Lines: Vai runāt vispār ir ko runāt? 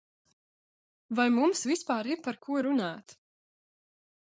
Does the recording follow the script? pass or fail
fail